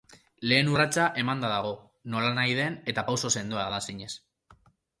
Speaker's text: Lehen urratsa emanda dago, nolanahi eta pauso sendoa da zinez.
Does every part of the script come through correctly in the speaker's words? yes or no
no